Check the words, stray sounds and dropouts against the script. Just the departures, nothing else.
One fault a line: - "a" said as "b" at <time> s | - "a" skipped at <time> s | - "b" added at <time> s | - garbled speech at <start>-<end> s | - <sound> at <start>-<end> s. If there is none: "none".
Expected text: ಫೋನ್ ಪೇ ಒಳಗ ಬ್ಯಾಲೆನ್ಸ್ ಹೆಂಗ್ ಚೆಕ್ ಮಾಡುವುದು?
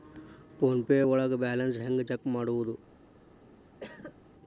- cough at 3.8-4.2 s